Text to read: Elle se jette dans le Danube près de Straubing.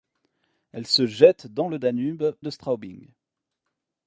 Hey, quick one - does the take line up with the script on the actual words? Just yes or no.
no